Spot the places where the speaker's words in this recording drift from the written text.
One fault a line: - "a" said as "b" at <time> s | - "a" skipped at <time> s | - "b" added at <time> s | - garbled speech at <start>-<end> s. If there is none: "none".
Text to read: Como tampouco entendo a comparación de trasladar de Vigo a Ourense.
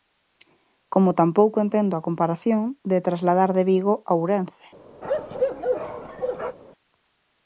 none